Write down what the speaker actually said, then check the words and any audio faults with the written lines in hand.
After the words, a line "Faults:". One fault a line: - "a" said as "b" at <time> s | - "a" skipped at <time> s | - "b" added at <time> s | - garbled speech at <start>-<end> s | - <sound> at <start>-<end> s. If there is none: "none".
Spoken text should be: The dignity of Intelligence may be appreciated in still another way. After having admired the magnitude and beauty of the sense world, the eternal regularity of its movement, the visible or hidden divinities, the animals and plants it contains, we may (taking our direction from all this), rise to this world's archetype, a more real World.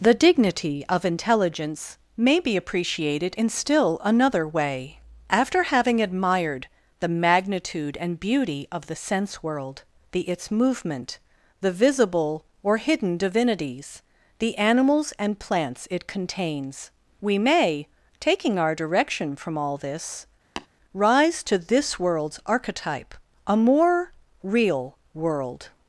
The dignity of Intelligence may be appreciated in still another way. After having admired the magnitude and beauty of the sense world, the its movement, the visible or hidden divinities, the animals and plants it contains, we may (taking our direction from all this), rise to this world's archetype, a more real World.
Faults:
- "eternal regularity of" skipped at 10.2 s
- tap at 20.6-20.7 s